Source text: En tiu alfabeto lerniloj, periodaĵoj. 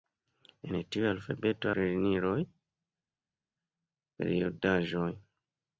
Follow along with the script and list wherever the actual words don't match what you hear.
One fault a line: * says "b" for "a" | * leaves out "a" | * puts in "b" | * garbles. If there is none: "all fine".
all fine